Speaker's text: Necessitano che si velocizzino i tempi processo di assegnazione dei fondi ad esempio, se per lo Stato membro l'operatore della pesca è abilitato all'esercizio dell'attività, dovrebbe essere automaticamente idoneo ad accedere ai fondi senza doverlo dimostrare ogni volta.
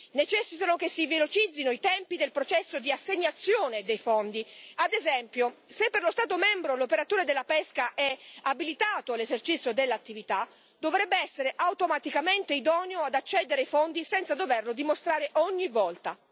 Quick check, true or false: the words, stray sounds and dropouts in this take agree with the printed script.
false